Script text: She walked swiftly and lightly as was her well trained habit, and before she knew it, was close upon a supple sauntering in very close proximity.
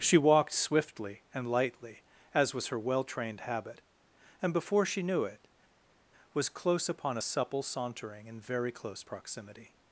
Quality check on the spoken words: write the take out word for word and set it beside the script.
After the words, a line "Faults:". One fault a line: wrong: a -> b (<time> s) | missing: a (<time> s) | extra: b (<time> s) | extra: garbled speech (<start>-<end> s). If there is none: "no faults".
She walked swiftly and lightly as was her well trained habit, and before she knew it, was close upon a supple sauntering in very close proximity.
Faults:
no faults